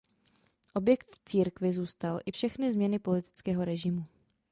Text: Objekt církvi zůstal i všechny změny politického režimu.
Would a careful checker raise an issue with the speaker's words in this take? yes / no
no